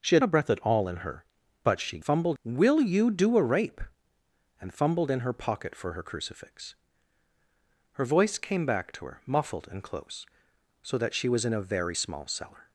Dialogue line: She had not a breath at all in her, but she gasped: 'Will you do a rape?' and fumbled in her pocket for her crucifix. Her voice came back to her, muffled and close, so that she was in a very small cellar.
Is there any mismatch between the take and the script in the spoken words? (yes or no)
yes